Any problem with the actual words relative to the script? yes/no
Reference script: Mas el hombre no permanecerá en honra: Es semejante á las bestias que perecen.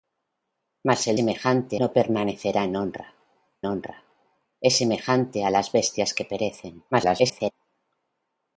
yes